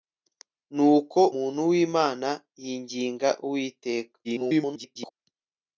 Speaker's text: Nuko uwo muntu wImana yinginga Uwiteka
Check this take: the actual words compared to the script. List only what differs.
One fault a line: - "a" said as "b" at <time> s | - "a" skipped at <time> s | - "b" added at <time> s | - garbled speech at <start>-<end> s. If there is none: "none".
- "uwo" skipped at 1.2 s
- garbled speech at 4.2-5.1 s